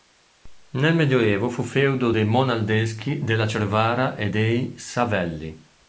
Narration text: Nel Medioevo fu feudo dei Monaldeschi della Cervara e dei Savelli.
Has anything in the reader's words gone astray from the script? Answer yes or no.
no